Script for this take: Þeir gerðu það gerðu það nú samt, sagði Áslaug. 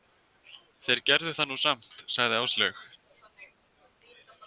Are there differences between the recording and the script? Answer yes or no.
yes